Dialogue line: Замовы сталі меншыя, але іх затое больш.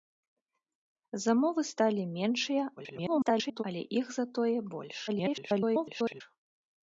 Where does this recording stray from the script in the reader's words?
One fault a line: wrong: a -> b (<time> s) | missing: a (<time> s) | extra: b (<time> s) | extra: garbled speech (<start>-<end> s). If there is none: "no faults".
extra: garbled speech (2.8-3.6 s)
extra: garbled speech (5.1-6.2 s)